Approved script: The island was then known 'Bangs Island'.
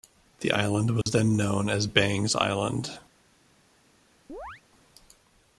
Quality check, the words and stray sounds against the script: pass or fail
fail